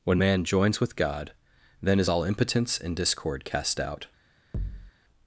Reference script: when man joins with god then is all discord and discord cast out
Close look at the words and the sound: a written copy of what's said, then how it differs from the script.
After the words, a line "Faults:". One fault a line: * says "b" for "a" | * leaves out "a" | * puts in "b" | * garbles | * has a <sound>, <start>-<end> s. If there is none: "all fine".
when man joins with god then is all impotence and discord cast out
Faults:
* says "impotence" for "discord"
* has a thud, 4.5-4.9 s